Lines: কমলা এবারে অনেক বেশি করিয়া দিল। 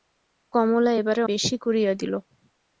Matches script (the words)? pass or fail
fail